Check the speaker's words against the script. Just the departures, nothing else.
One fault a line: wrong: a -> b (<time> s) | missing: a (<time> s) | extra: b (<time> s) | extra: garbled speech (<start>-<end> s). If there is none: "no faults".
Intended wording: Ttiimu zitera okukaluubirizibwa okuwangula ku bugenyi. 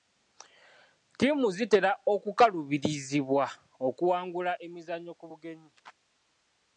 extra: emizannyo (4.7 s)